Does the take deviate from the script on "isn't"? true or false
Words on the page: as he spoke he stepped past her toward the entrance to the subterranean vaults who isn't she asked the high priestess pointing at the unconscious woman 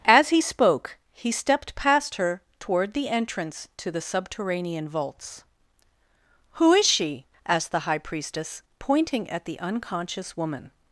true